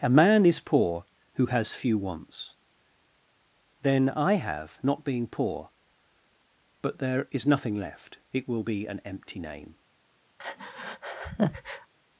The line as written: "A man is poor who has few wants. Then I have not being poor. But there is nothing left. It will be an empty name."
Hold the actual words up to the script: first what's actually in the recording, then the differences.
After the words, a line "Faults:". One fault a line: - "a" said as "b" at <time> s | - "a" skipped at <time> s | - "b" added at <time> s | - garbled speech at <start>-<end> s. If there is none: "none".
"A man is poor who has few wants. Then I have not being poor. But there is nothing left. It will be an empty name."
Faults:
none